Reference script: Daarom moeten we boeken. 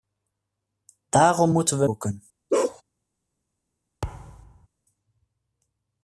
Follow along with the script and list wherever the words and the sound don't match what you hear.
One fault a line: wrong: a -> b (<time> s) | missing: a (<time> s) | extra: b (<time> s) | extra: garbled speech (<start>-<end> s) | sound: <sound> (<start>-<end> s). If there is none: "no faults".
sound: bark (2.5-2.8 s)
sound: thud (4.0-4.7 s)